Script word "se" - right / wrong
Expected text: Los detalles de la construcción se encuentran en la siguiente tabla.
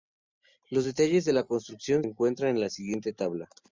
wrong